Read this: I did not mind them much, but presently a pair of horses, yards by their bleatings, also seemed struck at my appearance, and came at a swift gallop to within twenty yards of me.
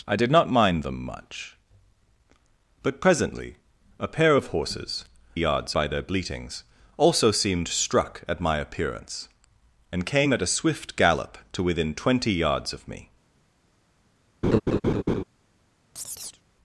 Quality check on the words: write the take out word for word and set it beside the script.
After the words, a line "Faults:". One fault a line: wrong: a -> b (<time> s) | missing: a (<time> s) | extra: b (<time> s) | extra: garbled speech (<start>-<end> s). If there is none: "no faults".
I did not mind them much, but presently a pair of horses, yards by their bleatings, also seemed struck at my appearance, and came at a swift gallop to within twenty yards of me.
Faults:
no faults